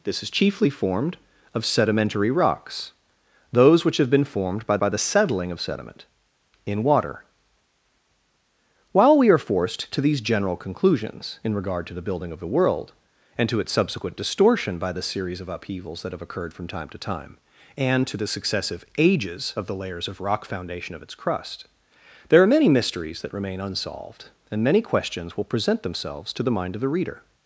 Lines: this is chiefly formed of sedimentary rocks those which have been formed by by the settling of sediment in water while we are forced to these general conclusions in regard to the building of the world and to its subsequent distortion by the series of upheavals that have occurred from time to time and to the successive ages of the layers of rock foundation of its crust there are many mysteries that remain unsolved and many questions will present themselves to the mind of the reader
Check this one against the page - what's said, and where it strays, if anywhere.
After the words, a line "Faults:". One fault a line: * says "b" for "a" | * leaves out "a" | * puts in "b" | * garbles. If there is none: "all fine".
this is chiefly formed of sedimentary rocks those which have been formed by by the settling of sediment in water while we are forced to these general conclusions in regard to the building of the world and to its subsequent distortion by the series of upheavals that have occurred from time to time and to the successive ages of the layers of rock foundation of its crust there are many mysteries that remain unsolved and many questions will present themselves to the mind of the reader
Faults:
all fine